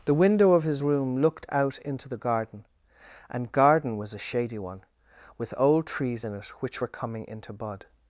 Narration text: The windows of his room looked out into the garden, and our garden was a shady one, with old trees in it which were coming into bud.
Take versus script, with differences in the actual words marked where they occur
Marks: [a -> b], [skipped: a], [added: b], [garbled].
The [windows -> window] of his room looked out into the garden, and [skipped: our] garden was a shady one, with old trees in it which were coming into bud.